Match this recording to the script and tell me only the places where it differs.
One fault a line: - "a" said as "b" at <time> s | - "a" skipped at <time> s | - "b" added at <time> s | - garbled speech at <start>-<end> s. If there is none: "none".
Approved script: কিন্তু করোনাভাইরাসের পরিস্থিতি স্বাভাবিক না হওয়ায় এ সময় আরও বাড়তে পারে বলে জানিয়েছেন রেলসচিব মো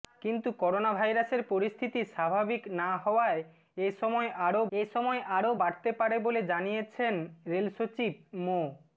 - "এ সময় আরও" added at 4.7 s